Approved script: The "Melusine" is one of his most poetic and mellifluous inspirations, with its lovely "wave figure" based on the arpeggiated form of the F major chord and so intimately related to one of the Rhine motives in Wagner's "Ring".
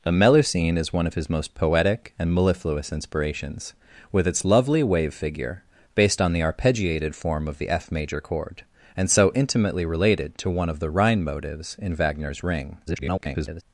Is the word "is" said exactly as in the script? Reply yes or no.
yes